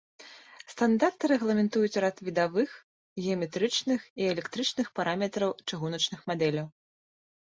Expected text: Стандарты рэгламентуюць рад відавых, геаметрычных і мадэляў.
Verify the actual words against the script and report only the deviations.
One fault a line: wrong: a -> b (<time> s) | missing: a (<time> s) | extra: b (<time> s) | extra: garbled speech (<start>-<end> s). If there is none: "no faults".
extra: электрычных параметраў чыгуначных (4.3 s)